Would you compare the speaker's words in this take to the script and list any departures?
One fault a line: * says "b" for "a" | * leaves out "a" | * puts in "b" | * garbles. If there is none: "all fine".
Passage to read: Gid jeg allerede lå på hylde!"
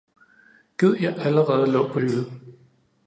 all fine